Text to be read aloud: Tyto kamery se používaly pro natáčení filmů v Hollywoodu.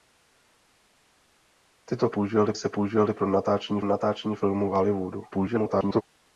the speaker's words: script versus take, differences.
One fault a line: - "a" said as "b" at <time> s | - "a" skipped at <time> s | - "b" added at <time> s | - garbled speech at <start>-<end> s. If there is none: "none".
- "kamery" said as "používaly" at 2.1 s
- "natáčení" added at 3.8 s
- garbled speech at 5.3-6.0 s